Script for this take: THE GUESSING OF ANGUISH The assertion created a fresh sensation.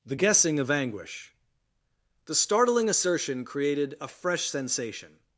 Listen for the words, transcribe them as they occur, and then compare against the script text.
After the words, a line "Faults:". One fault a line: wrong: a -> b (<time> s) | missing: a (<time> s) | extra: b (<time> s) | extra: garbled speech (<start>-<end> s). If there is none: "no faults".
THE GUESSING OF ANGUISH The startling assertion created a fresh sensation.
Faults:
extra: startling (2.3 s)